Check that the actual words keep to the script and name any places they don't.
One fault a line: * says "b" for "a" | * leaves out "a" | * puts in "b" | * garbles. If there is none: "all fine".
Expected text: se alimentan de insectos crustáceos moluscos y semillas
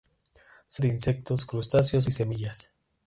* leaves out "alimentan"
* leaves out "moluscos"